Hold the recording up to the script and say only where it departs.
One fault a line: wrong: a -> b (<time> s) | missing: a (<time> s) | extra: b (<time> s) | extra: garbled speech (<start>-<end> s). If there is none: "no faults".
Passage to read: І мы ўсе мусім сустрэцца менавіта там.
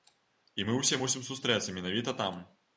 no faults